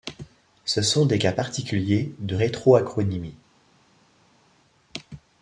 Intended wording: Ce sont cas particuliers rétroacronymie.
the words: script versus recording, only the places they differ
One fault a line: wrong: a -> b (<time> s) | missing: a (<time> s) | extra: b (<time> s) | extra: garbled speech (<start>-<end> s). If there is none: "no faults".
extra: des (1.1 s)
extra: de (2.2 s)